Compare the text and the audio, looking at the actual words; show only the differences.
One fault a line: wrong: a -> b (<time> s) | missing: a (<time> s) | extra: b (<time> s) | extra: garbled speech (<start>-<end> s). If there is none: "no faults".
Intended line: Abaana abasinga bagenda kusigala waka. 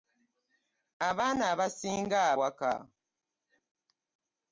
missing: bagenda kusigala (2.2 s)